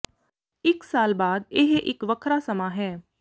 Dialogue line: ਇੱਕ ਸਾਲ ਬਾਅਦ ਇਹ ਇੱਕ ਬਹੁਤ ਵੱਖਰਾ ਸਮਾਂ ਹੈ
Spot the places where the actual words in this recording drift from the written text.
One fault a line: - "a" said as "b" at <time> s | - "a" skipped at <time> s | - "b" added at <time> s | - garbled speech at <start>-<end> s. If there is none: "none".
- "ਬਹੁਤ" skipped at 2.0 s